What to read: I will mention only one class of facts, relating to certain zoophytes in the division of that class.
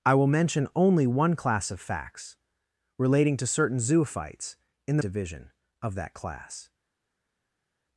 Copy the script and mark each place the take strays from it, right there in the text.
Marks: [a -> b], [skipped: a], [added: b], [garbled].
I will mention only one class of facts, relating to certain zoophytes in the division of that class.